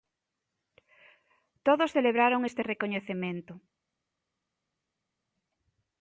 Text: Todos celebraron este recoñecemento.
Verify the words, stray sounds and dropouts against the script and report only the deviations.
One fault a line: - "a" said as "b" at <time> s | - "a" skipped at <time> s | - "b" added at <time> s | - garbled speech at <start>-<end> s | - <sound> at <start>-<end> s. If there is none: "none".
none